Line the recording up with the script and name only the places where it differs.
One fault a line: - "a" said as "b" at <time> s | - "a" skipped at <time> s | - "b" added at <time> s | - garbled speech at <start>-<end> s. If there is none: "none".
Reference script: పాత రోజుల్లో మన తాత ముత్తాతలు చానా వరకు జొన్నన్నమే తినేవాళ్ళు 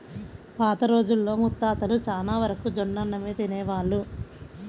- "మన తాత" skipped at 1.3 s